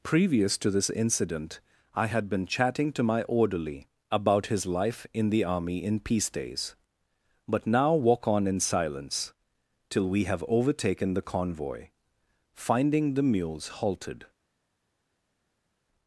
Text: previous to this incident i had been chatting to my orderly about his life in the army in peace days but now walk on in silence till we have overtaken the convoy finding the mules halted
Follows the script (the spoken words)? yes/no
yes